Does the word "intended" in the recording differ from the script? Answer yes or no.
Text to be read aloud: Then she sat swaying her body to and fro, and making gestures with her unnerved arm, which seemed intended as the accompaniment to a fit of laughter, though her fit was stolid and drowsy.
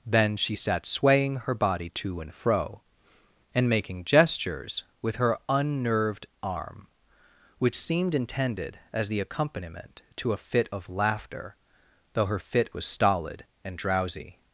no